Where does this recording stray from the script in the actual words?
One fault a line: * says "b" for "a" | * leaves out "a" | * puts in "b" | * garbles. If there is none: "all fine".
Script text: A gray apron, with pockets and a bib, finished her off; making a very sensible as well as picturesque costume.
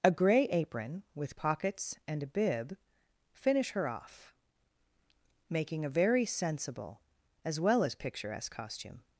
* says "finish" for "finished"